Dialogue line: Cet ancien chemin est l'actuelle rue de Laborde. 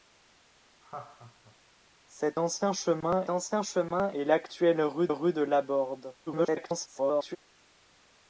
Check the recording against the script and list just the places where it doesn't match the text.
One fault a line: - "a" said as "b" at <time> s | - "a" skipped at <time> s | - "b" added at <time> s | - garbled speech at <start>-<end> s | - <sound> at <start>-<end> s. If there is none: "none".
- laugh at 0.8-1.6 s
- "ancien chemin" added at 3.3 s
- "rue" added at 5.1 s
- garbled speech at 6.3-7.4 s